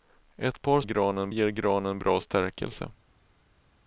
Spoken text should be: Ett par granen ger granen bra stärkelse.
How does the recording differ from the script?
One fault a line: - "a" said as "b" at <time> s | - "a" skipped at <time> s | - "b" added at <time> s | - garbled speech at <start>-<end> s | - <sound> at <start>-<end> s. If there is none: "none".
none